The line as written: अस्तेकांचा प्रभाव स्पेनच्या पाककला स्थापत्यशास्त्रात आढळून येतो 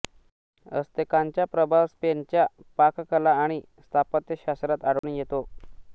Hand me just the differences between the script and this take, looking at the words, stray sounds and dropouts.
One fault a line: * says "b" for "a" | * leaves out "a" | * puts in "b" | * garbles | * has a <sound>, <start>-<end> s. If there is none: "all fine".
* puts in "आणि"
* has a dropout, 5.0-5.0 s